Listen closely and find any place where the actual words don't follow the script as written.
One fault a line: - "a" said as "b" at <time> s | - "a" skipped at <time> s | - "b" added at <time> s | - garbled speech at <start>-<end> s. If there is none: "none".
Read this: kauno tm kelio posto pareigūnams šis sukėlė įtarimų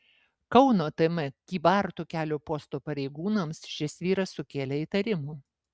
- "kybartų" added at 1.5 s
- "vyras" added at 4.1 s